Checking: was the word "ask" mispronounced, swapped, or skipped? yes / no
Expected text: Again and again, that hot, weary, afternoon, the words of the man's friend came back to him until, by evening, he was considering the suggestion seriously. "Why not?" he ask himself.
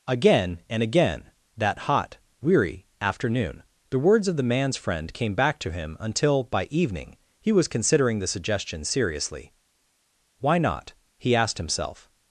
yes